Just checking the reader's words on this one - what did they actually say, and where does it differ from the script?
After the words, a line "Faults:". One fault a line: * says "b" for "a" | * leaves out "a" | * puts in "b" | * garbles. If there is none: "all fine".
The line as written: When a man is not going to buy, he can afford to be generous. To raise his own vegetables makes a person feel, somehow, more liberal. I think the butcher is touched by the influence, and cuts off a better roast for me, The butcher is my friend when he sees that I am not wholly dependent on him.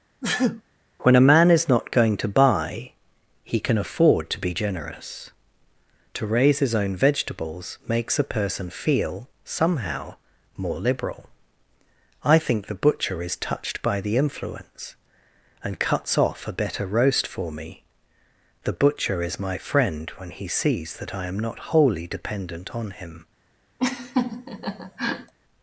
When a man is not going to buy, he can afford to be generous. To raise his own vegetables makes a person feel, somehow, more liberal. I think the butcher is touched by the influence, and cuts off a better roast for me, The butcher is my friend when he sees that I am not wholly dependent on him.
Faults:
all fine